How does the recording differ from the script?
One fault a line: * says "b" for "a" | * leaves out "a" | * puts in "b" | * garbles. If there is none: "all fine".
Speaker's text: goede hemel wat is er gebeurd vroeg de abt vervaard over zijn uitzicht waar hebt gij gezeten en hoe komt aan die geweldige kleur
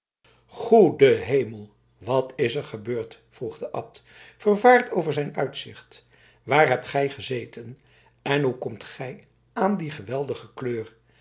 * puts in "gij"